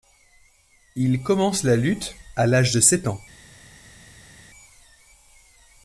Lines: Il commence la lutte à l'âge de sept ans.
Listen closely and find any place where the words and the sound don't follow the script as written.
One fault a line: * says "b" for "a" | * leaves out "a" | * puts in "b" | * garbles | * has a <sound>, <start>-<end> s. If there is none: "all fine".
all fine